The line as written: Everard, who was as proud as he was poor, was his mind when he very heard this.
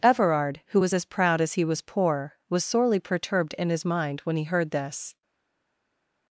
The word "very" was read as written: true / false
false